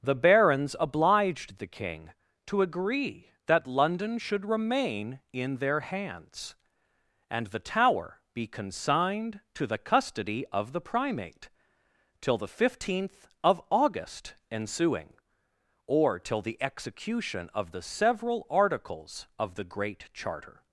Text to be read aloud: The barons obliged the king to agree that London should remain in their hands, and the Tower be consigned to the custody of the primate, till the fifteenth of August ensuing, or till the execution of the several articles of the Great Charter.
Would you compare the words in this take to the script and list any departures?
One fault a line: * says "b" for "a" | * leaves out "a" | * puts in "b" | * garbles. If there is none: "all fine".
all fine